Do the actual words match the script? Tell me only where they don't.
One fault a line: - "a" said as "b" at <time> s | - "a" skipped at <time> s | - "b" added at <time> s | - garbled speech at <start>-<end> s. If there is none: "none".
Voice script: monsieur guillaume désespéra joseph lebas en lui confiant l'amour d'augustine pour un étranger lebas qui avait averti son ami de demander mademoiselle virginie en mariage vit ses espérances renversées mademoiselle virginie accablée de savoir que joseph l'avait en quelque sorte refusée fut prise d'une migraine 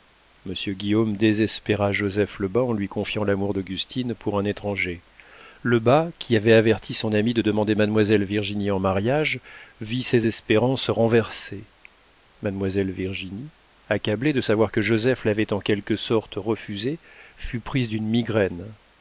none